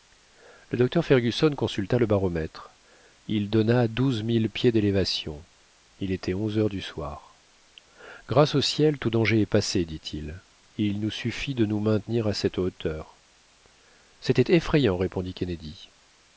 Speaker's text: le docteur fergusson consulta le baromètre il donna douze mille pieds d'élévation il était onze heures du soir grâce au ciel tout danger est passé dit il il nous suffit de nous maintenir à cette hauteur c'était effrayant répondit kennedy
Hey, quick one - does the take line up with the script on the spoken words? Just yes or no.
yes